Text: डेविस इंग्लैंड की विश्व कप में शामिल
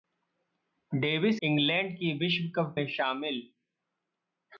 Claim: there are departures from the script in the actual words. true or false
false